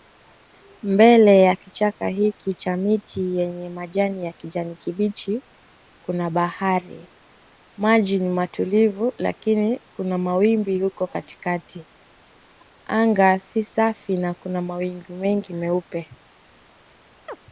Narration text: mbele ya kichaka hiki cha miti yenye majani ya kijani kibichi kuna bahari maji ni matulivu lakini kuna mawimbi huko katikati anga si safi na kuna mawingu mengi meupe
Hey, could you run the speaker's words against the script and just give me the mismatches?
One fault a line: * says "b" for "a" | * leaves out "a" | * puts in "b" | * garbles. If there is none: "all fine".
all fine